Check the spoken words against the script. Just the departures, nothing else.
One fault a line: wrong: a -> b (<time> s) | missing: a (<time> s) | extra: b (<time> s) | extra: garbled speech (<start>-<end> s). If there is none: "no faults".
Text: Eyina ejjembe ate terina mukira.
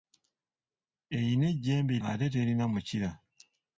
no faults